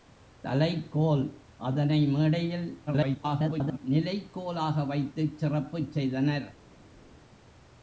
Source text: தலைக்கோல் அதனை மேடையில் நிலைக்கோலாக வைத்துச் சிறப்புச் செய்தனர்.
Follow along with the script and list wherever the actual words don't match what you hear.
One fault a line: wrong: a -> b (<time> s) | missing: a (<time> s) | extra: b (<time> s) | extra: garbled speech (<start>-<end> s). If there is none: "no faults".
extra: garbled speech (2.9-3.8 s)